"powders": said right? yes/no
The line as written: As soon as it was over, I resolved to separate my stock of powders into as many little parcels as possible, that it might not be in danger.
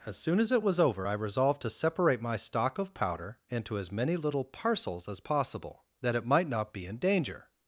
no